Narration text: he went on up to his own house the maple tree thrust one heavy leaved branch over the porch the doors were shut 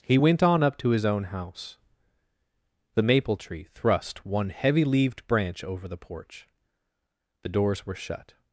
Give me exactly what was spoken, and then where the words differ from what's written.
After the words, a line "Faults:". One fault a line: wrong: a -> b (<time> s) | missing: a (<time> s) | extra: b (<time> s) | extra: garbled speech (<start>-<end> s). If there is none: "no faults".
he went on up to his own house the maple tree thrust one heavy leaved branch over the porch the doors were shut
Faults:
no faults